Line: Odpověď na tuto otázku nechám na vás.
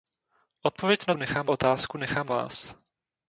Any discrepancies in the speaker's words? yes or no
yes